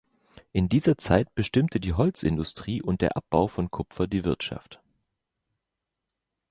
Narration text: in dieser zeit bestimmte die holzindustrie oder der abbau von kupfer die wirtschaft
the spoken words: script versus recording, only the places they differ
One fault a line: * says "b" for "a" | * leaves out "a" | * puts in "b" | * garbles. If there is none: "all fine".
* says "und" for "oder"